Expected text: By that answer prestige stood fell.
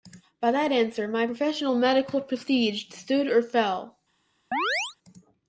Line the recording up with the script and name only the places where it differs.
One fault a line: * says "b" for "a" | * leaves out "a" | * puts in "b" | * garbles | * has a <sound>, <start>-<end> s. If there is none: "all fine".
* puts in "my professional medical"
* puts in "or"
* has a chirp, 4.5-5.0 s